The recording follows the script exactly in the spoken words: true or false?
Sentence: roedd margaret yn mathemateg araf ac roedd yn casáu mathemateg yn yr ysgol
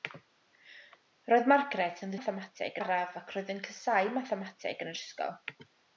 true